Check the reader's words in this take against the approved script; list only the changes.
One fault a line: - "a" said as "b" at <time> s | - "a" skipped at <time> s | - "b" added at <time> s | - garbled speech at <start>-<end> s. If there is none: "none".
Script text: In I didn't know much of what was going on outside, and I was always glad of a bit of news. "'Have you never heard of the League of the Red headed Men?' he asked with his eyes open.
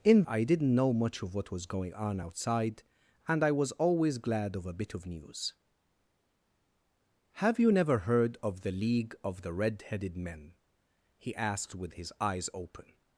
none